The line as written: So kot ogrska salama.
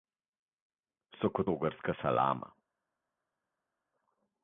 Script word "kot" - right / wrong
right